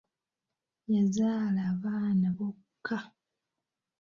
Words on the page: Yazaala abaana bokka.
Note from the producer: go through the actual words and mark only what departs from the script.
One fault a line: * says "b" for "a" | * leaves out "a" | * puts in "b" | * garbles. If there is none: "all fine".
all fine